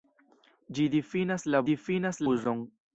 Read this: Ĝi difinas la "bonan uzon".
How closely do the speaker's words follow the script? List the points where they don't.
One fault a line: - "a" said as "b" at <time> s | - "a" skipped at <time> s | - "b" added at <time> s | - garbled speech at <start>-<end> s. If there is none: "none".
- "bonan" said as "difinas" at 1.7 s